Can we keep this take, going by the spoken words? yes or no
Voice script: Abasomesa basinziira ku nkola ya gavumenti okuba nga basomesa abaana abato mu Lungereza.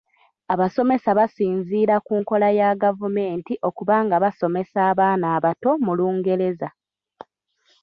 yes